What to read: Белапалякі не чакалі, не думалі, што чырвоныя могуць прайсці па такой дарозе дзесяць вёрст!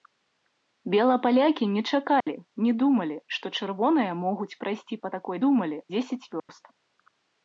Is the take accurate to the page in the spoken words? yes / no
no